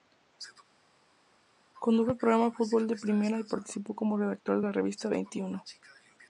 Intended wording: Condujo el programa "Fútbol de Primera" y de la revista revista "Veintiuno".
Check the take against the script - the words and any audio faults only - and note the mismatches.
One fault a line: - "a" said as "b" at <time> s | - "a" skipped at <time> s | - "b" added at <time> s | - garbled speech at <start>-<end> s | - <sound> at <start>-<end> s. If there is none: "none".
- "participó como redactor" added at 3.4 s
- "revista" skipped at 5.1 s